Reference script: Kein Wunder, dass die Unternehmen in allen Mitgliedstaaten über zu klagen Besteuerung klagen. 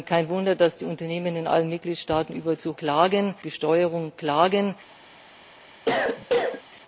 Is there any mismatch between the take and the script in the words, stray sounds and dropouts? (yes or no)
yes